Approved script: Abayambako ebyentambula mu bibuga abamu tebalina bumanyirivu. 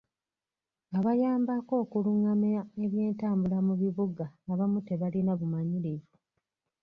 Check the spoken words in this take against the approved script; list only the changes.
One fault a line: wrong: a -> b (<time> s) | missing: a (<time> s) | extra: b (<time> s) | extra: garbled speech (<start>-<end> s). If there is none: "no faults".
extra: okulungamya (1.8 s)